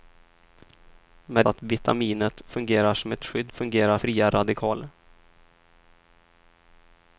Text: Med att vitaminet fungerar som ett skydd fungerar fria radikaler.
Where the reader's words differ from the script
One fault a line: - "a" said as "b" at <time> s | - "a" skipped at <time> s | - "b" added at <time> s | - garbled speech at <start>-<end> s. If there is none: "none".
none